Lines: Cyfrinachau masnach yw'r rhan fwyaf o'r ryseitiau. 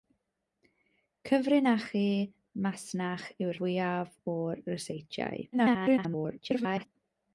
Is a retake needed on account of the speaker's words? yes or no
yes